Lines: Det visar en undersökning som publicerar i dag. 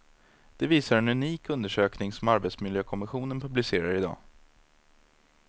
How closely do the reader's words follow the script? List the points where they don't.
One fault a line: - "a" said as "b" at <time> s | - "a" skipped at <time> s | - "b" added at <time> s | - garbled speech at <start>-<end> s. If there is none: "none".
- "unik" added at 1.1 s
- "arbetsmiljökommissionen" added at 2.3 s